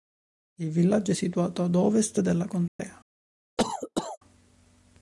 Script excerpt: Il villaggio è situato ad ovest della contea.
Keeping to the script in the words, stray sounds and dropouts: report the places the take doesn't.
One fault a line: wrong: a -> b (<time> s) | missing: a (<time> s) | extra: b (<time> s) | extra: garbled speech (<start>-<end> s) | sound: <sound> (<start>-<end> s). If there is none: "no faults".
sound: dropout (2.7-2.8 s)
sound: cough (3.6-4.2 s)